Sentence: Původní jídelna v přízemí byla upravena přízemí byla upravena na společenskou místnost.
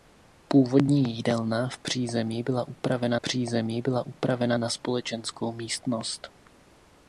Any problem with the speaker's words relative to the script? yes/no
no